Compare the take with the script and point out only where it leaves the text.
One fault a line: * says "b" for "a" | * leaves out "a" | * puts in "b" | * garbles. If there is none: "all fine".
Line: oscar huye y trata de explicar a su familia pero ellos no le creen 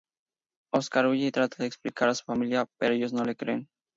all fine